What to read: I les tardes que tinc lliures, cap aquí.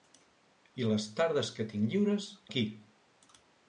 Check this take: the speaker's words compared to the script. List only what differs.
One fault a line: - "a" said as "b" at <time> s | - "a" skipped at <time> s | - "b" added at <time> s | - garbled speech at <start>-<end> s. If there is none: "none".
- "cap" skipped at 2.3 s